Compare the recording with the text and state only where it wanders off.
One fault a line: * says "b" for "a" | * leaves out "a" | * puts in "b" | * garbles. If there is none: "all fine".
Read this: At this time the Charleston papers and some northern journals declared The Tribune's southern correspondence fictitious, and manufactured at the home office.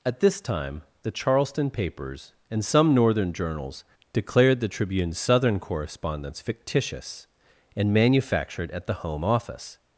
all fine